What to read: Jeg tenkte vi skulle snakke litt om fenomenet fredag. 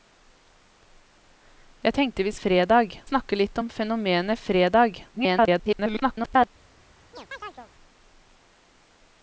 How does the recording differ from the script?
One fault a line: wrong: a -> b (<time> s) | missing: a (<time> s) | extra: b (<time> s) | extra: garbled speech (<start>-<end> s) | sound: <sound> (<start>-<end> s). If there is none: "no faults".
wrong: skulle -> fredag (2.4 s)
extra: garbled speech (5.1-6.5 s)
sound: chirp (7.1-7.7 s)